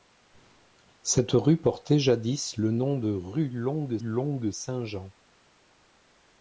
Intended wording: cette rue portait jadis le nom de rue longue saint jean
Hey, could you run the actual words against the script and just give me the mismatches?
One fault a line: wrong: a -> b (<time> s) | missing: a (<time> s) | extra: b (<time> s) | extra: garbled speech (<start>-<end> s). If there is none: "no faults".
extra: longue (4.0 s)